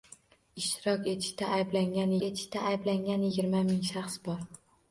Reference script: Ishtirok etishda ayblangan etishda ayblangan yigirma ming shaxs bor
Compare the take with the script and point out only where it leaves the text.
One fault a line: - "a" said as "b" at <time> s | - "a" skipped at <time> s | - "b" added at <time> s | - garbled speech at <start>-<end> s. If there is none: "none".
none